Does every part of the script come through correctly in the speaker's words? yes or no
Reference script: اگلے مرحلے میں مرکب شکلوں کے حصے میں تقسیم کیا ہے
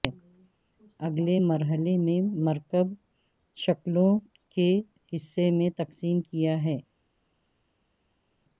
yes